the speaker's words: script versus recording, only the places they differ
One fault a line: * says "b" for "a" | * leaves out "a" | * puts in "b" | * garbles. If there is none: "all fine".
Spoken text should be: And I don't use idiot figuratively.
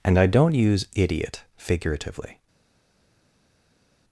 all fine